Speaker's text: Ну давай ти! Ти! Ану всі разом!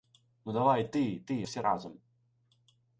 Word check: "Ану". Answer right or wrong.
wrong